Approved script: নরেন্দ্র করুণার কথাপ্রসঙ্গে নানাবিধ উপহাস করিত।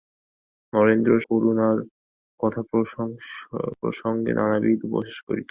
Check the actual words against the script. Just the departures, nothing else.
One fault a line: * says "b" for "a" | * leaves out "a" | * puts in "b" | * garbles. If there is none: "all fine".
all fine